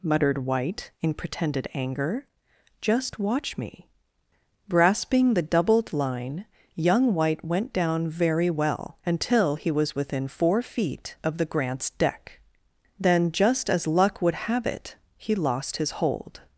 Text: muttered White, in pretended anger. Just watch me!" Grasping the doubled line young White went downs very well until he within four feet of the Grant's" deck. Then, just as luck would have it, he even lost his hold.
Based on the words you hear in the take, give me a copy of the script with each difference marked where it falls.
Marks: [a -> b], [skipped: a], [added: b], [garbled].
muttered White, in pretended anger. Just watch me!" Grasping the doubled line young White went [downs -> down] very well until he [added: was] within four feet of the Grant's" deck. Then, just as luck would have it, he [skipped: even] lost his hold.